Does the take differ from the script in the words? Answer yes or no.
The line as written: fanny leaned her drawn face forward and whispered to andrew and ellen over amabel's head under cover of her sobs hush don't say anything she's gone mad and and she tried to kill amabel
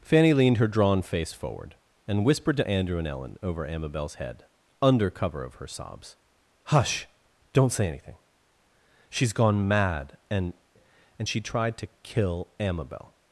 no